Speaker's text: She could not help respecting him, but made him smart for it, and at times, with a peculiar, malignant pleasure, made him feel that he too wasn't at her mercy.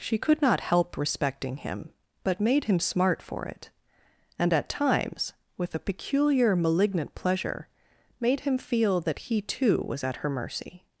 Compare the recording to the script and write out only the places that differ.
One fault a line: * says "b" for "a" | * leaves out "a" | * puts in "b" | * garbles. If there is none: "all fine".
* says "was" for "wasn't"